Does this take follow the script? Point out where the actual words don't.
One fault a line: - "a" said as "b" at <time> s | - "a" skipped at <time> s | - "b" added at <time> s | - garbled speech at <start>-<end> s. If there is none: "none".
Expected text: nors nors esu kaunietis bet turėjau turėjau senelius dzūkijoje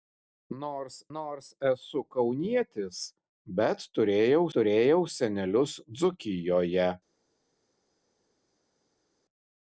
none